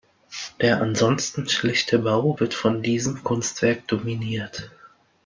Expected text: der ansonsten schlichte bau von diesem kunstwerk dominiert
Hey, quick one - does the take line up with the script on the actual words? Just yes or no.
no